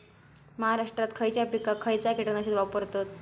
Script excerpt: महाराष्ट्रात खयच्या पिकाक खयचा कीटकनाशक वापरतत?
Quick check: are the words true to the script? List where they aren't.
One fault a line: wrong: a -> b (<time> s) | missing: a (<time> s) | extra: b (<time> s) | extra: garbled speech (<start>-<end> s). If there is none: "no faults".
no faults